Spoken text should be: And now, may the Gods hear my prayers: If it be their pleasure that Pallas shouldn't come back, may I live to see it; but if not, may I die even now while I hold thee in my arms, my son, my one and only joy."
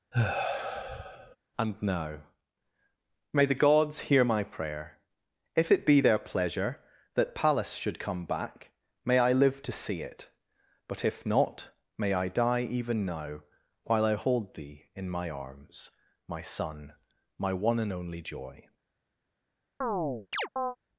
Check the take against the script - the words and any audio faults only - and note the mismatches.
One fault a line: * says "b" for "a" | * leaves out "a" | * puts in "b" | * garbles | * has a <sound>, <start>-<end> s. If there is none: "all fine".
* has a sigh, 0.1-1.4 s
* says "prayer" for "prayers"
* says "should" for "shouldn't"
* has a chirp, 19.8-20.8 s